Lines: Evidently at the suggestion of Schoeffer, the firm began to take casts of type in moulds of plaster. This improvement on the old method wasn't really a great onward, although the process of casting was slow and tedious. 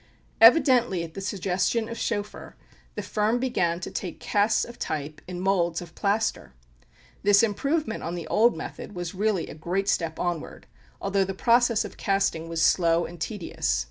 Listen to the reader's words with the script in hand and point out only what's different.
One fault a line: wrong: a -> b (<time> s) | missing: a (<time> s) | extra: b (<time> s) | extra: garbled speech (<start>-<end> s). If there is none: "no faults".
wrong: wasn't -> was (8.9 s)
extra: step (9.9 s)